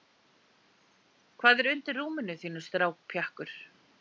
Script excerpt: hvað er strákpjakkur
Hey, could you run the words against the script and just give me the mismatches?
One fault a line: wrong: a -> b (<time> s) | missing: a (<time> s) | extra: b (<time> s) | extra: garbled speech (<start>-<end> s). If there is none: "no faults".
extra: undir rúminu þínu (1.7 s)